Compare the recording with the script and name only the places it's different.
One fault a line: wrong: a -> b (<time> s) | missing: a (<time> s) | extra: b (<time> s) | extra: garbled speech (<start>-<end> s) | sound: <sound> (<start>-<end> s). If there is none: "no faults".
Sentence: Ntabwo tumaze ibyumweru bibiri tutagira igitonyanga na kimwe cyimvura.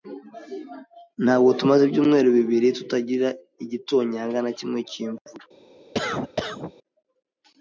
sound: cough (5.9-6.7 s)